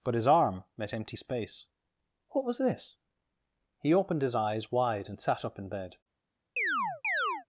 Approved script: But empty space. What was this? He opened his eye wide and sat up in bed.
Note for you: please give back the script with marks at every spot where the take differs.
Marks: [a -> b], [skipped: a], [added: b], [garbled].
But [added: his arm met] empty space. What was this? He opened his [eye -> eyes] wide and sat up in bed.